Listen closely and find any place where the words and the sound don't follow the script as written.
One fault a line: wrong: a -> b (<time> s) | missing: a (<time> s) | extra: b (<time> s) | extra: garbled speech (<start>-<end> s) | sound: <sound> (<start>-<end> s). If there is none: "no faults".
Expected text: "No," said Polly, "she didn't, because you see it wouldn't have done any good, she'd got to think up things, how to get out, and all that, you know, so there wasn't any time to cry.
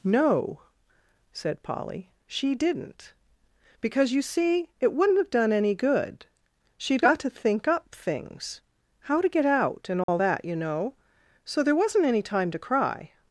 sound: dropout (10.0-10.1 s)